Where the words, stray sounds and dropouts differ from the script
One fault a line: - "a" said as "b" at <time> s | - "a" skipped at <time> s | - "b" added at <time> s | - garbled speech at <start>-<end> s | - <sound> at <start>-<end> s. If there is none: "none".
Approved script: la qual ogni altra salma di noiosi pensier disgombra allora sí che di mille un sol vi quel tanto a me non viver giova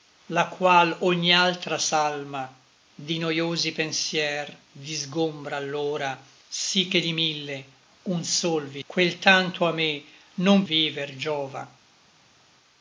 none